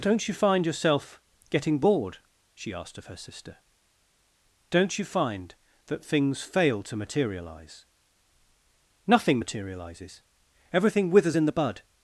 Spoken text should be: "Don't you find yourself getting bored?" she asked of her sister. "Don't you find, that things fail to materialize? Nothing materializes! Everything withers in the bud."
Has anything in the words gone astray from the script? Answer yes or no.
no